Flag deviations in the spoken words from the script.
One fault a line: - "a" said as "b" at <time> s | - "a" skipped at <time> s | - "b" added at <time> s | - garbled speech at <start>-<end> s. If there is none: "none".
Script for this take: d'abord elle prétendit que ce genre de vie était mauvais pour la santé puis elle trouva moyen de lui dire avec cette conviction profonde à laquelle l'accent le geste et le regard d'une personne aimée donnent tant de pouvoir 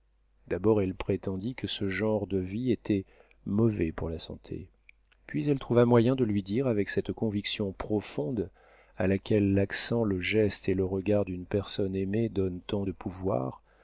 none